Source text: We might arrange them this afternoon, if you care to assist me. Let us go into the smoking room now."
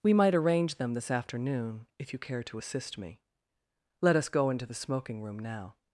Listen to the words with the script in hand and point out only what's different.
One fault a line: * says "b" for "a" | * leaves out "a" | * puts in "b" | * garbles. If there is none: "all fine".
all fine